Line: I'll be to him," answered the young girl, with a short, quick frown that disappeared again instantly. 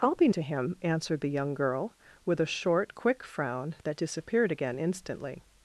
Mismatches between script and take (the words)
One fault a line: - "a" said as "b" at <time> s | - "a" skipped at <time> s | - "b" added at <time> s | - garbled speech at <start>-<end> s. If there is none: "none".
none